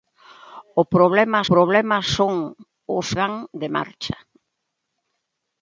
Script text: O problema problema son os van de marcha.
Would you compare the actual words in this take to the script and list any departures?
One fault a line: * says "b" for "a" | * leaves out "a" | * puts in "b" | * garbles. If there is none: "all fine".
all fine